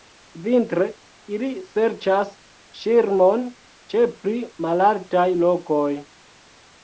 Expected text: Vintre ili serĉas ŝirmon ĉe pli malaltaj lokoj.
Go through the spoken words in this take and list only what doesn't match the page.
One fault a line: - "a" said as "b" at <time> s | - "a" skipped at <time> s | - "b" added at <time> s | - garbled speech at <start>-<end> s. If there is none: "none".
none